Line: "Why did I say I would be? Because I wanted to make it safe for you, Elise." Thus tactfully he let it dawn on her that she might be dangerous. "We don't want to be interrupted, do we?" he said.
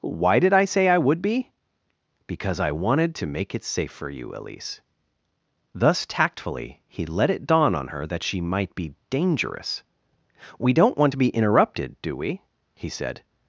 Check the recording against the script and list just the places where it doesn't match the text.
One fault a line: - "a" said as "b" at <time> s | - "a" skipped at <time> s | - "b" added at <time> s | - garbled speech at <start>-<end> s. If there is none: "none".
none